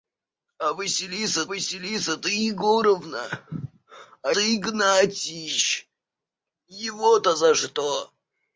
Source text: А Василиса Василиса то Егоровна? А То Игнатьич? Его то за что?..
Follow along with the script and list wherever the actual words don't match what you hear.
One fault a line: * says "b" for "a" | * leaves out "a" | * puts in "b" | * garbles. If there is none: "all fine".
all fine